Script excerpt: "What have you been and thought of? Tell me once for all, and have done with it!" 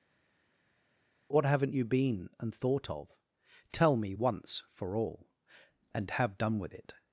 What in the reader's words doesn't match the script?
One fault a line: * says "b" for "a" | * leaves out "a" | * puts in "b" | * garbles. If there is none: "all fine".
* says "haven't" for "have"